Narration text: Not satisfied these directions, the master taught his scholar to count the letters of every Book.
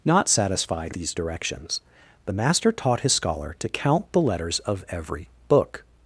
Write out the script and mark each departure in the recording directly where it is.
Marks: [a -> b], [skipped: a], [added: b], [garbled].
Not satisfied these directions, the master taught his scholar to count the letters of every Book.